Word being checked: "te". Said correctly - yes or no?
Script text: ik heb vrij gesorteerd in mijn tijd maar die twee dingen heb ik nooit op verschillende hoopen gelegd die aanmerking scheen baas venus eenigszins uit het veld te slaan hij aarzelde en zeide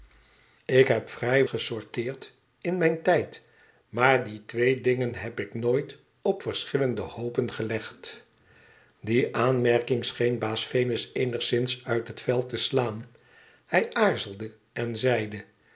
yes